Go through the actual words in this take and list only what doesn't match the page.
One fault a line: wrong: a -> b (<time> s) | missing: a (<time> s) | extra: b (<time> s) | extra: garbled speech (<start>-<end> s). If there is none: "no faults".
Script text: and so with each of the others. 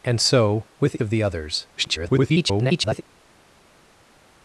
missing: each (1.0 s)
extra: garbled speech (1.8-3.0 s)